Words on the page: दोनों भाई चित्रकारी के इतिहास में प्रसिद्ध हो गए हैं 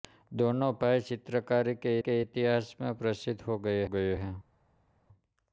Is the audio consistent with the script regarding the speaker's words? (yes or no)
no